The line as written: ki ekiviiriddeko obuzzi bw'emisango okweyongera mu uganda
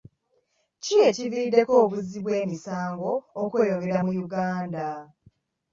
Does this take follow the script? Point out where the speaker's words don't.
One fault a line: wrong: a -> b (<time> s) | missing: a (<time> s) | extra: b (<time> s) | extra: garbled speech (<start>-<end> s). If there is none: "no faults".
no faults